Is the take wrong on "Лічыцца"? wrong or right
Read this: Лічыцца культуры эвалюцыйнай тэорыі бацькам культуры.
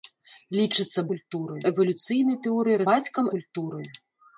right